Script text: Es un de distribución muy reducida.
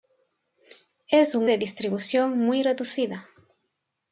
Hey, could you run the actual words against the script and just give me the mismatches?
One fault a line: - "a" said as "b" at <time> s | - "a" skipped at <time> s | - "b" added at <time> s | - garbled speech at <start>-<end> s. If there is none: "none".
none